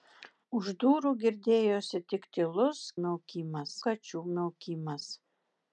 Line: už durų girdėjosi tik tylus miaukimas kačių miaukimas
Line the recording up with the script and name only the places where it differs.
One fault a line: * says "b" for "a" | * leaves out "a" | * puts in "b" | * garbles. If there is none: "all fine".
all fine